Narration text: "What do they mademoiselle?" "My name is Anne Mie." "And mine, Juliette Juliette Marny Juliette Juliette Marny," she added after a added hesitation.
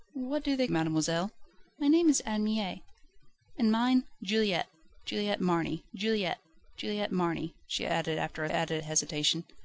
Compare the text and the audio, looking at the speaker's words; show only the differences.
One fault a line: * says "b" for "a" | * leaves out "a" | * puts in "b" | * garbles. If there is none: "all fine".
all fine